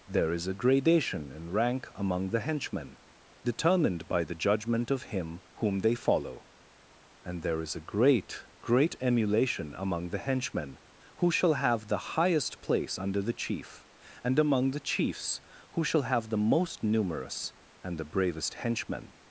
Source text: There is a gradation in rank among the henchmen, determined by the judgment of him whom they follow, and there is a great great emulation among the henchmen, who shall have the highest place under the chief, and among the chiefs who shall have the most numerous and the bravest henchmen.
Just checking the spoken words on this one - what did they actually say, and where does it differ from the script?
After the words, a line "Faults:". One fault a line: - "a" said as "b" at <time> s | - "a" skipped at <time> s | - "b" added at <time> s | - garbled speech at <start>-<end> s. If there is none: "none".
There is a gradation in rank among the henchmen, determined by the judgment of him whom they follow, and there is a great great emulation among the henchmen, who shall have the highest place under the chief, and among the chiefs who shall have the most numerous and the bravest henchmen.
Faults:
none